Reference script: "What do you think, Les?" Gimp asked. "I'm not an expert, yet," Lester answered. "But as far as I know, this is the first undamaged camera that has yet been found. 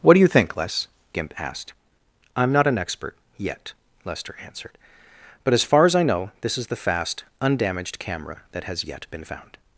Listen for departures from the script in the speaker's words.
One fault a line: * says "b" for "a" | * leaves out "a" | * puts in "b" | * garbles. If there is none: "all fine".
* says "fast" for "first"